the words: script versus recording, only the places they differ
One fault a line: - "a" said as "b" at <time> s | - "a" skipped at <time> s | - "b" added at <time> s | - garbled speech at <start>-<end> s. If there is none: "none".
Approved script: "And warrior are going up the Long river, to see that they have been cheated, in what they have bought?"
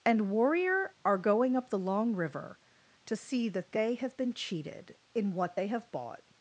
none